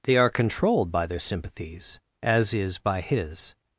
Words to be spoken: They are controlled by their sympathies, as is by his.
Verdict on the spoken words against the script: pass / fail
pass